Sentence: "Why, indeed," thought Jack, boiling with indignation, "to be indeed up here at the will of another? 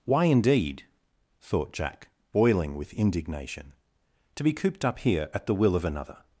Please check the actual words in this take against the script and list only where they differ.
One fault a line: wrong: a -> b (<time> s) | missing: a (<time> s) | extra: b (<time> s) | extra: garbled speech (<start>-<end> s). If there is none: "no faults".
wrong: indeed -> cooped (4.5 s)